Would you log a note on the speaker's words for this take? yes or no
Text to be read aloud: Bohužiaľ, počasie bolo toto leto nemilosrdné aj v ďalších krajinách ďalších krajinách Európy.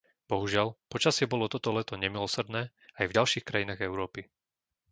yes